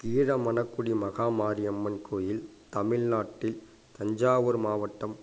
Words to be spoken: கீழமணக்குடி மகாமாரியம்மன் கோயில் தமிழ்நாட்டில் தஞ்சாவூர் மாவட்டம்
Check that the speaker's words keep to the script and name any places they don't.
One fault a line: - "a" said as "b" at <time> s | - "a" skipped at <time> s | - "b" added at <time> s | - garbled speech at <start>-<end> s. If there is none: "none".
none